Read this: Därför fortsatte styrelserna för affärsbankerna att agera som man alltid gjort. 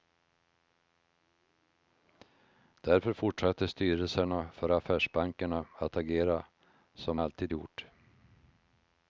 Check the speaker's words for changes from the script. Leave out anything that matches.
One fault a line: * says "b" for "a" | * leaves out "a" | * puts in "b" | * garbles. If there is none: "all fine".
* leaves out "man"